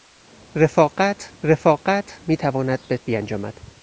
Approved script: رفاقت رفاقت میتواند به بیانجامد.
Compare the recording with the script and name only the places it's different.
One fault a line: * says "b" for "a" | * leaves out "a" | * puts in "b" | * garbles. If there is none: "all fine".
all fine